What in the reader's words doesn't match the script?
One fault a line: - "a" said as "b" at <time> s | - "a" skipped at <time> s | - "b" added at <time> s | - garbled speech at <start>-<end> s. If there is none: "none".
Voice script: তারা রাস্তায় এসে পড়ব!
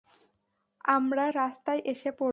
- "তারা" said as "আমরা" at 0.9 s